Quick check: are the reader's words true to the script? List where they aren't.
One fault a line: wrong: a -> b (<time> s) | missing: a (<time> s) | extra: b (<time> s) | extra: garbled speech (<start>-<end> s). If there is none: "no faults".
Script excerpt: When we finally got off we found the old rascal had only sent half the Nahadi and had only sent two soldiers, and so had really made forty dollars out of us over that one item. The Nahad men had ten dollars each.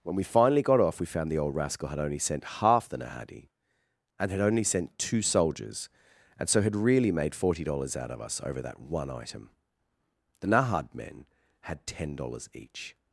no faults